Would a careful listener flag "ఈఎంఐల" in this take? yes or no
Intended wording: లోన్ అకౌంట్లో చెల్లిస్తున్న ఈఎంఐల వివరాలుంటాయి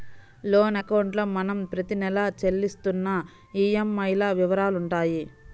no